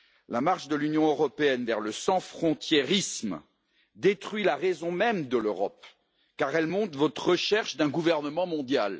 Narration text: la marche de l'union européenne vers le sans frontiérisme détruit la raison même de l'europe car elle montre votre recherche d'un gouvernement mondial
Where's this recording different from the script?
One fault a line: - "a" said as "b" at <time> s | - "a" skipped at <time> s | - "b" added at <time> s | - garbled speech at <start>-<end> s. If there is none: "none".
none